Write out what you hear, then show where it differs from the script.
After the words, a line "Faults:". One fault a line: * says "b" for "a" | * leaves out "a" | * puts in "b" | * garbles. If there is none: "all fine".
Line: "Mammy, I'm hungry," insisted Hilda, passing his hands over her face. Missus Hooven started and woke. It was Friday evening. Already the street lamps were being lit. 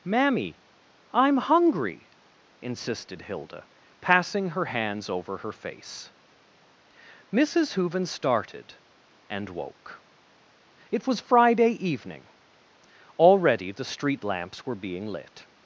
"Mammy, I'm hungry," insisted Hilda, passing her hands over her face. Missus Hooven started and woke. It was Friday evening. Already the street lamps were being lit.
Faults:
* says "her" for "his"